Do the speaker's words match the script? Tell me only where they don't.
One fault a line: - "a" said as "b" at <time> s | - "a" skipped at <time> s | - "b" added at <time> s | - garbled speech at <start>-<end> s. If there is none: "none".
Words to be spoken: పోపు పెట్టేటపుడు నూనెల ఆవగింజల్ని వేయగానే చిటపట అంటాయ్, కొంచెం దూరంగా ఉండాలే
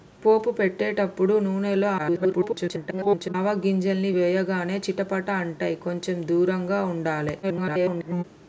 - garbled speech at 2.0-3.3 s
- garbled speech at 7.4-8.2 s